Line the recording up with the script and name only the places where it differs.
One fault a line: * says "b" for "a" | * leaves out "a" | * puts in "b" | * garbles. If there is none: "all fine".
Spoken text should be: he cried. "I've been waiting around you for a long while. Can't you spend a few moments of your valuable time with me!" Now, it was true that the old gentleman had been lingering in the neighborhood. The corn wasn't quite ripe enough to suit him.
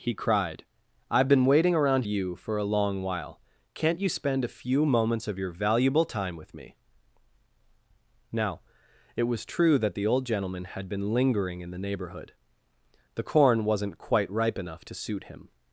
all fine